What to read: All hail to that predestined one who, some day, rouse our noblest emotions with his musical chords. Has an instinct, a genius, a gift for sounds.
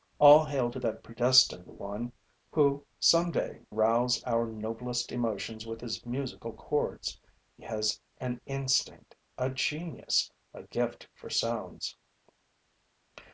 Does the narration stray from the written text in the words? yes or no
no